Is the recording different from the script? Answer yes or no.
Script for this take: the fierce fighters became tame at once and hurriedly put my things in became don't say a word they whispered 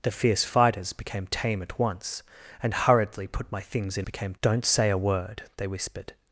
no